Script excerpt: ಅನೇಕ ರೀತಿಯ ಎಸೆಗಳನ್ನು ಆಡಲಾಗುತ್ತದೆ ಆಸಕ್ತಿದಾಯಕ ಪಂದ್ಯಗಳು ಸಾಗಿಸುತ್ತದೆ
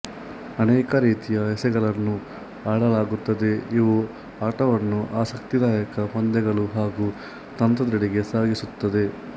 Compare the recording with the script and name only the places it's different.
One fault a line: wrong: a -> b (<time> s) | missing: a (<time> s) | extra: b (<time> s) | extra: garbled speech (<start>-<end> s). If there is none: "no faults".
extra: ಇವು ಆಟವನ್ನು (3.8 s)
extra: ಹಾಗೂ ತಂತ್ರದೆಡೆಗೆ (6.8 s)